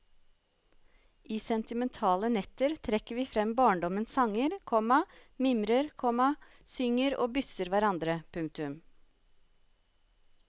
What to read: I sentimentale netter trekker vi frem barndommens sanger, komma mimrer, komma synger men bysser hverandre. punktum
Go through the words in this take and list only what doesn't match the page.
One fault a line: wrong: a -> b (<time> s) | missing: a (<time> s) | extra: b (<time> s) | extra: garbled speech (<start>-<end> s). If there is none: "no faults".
wrong: men -> og (7.2 s)